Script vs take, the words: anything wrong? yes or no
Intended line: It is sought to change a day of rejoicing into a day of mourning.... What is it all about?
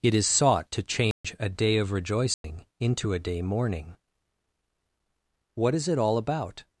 yes